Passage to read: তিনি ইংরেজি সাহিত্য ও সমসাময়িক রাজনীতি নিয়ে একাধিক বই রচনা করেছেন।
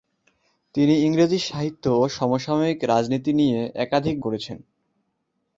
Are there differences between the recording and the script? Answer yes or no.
yes